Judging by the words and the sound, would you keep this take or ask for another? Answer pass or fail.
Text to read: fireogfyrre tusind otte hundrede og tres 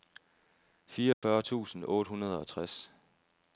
fail